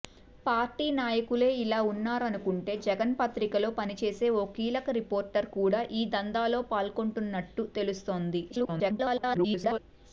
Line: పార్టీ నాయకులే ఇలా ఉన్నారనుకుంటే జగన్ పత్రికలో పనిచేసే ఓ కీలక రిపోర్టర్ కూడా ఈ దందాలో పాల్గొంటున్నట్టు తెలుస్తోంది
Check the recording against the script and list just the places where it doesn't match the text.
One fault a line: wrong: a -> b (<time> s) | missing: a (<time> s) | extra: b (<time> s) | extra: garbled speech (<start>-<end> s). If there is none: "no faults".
extra: garbled speech (8.5-9.8 s)